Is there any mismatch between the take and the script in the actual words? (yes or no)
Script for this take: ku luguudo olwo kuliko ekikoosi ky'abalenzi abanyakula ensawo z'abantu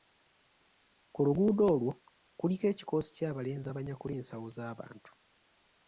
no